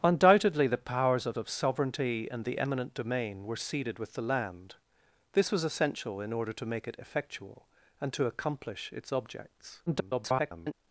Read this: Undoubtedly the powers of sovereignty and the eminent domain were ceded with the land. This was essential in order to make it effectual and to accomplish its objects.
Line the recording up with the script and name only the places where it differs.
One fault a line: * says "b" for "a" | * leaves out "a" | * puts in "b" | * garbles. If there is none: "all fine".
* puts in "of"
* garbles